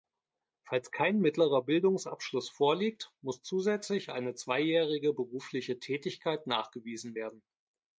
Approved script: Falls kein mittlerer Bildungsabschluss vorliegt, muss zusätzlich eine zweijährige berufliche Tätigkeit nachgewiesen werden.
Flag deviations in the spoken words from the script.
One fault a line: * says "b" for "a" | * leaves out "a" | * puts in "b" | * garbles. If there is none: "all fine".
all fine